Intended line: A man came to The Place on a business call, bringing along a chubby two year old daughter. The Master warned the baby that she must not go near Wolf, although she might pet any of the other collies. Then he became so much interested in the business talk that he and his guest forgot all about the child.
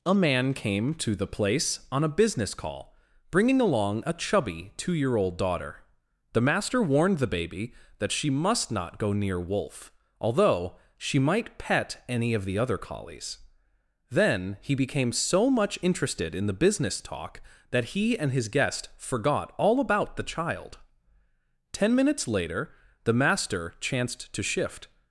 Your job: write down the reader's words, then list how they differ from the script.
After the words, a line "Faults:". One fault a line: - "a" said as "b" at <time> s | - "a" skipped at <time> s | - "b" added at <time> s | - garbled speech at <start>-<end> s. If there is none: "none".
A man came to The Place on a business call, bringing along a chubby two year old daughter. The Master warned the baby that she must not go near Wolf, although she might pet any of the other collies. Then he became so much interested in the business talk that he and his guest forgot all about the child. Ten minutes later the Master chanced to shift
Faults:
- "Ten minutes later the Master chanced to shift" added at 21.7 s